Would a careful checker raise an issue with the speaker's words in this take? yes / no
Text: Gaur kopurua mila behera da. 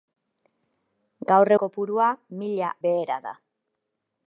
no